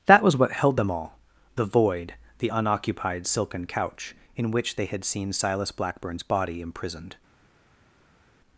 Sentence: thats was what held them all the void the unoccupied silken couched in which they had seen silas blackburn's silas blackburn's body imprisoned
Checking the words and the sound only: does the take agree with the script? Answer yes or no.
no